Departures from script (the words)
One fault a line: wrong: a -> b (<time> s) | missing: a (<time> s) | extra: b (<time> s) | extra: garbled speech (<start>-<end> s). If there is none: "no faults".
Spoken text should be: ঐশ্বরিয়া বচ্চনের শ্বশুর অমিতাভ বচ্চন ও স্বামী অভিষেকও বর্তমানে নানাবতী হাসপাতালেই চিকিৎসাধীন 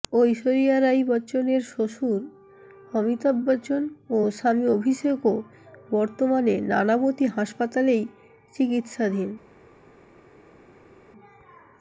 extra: রাই (0.8 s)